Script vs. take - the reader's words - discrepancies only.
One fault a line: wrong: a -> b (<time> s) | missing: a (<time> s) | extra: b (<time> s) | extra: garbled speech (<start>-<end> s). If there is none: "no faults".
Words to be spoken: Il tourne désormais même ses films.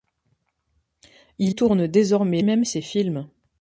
no faults